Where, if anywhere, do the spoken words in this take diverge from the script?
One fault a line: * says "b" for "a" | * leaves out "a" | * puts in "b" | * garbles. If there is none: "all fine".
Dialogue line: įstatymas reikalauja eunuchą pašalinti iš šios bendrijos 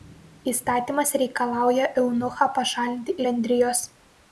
* leaves out "iš šios"